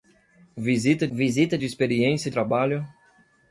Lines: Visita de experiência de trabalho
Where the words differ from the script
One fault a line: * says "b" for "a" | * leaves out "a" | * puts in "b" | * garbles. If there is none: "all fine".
* puts in "visita"
* leaves out "de"